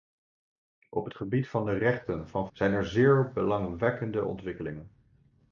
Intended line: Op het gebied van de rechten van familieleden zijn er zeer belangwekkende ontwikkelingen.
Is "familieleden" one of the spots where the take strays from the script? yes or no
yes